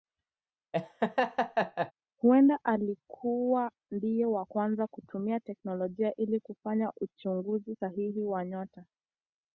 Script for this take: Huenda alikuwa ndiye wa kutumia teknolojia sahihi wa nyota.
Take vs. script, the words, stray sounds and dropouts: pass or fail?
fail